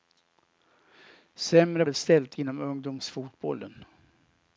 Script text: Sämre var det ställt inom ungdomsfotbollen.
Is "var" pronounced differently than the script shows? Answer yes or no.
yes